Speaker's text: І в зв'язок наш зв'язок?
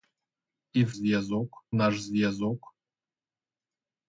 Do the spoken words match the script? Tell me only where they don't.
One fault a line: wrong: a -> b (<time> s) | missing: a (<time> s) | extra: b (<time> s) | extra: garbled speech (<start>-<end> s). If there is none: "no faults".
no faults